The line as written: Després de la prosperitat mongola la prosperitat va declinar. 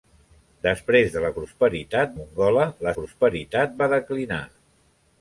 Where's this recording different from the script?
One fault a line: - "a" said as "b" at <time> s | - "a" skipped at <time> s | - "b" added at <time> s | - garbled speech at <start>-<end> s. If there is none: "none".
none